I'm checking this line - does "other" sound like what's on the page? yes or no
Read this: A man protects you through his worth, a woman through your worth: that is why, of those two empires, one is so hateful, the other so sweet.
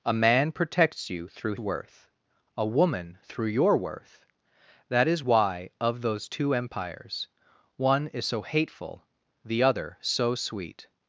yes